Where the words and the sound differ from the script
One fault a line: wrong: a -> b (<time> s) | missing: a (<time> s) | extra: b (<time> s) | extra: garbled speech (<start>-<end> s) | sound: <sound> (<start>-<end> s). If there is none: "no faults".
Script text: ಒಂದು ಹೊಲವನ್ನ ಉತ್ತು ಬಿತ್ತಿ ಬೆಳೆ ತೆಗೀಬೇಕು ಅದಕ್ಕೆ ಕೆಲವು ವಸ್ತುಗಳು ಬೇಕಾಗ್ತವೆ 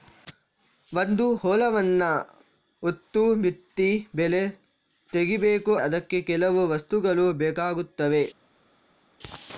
no faults